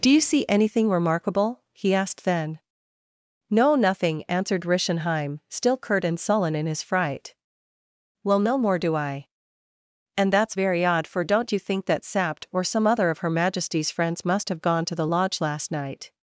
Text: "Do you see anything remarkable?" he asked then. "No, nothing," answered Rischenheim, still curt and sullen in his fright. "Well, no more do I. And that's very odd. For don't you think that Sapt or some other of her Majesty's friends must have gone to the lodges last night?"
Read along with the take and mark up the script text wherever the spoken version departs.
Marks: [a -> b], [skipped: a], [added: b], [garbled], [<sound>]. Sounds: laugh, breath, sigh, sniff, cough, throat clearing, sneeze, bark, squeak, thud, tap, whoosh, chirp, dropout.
"Do you see anything remarkable?" he asked then. "No, nothing," answered Rischenheim, still curt and sullen in his fright. "Well, no more do I. And that's very odd. For don't you think that Sapt or some other of her Majesty's friends must have gone to the [lodges -> lodge] last night?"